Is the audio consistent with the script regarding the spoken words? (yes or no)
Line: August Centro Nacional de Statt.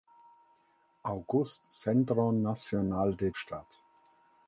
yes